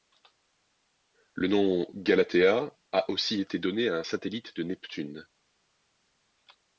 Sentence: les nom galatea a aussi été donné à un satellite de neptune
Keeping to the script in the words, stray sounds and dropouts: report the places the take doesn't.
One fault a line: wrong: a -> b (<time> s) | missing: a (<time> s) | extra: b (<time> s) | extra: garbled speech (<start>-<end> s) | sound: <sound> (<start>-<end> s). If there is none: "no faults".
wrong: les -> le (1.4 s)